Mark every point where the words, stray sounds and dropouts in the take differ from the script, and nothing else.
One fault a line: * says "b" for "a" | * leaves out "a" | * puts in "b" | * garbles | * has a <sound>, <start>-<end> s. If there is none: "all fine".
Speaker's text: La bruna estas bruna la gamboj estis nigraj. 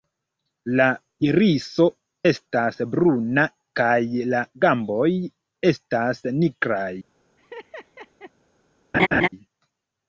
* says "iriso" for "bruna"
* puts in "kaj"
* says "estas" for "estis"
* has a laugh, 7.4-8.3 s
* has a laugh, 8.9-9.3 s